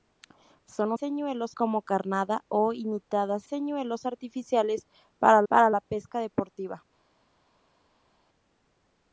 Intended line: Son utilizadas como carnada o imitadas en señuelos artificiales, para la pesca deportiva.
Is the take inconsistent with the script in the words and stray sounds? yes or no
yes